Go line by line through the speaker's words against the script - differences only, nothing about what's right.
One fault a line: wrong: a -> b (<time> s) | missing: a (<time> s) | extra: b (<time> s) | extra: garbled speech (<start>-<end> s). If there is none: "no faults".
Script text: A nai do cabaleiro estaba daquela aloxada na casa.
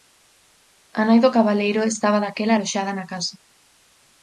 no faults